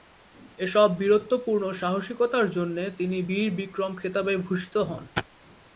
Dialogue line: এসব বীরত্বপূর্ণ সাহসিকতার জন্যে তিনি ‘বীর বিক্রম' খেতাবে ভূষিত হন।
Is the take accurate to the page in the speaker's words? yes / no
yes